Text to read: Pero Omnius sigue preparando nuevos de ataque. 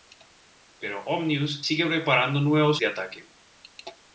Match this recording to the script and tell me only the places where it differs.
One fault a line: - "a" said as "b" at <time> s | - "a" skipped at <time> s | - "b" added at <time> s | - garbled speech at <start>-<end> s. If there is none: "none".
none